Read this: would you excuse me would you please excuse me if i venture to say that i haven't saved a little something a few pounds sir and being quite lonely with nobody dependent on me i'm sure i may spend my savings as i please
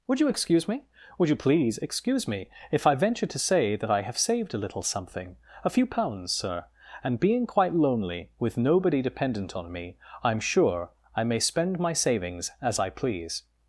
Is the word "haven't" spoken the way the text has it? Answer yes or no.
no